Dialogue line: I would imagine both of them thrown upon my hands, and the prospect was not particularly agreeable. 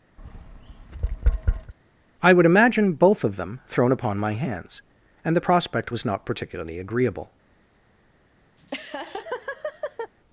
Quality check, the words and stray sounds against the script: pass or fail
fail